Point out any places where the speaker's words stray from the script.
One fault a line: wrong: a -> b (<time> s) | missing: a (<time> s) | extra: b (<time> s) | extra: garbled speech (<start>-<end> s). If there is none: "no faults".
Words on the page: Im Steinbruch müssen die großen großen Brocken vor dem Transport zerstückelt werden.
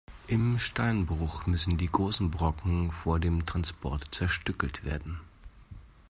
missing: großen (2.3 s)